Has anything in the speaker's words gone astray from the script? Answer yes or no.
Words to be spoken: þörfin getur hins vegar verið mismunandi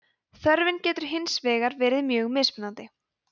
yes